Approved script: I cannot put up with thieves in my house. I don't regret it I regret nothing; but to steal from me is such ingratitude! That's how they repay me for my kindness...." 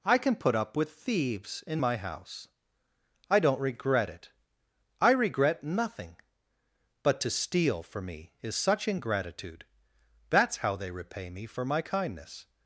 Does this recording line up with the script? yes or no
no